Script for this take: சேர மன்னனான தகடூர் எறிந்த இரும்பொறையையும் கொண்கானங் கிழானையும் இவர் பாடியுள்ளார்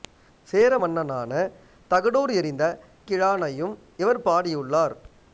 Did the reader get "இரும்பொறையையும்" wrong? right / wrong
wrong